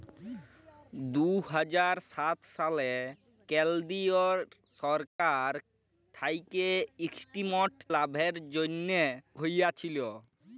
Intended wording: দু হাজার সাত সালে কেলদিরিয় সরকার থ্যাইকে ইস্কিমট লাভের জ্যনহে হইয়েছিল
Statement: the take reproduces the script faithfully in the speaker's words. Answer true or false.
true